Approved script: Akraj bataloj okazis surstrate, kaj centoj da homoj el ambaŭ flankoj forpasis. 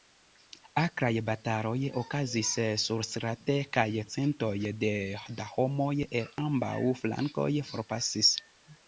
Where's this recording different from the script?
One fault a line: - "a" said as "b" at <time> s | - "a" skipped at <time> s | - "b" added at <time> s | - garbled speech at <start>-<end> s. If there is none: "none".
none